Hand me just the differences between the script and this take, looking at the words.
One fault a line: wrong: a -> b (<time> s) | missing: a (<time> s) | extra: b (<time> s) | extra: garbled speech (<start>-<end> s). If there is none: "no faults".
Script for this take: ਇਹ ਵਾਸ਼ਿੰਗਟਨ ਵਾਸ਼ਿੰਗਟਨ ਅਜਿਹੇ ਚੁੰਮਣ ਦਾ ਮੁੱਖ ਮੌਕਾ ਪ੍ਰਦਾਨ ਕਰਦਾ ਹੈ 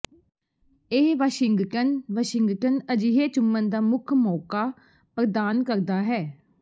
no faults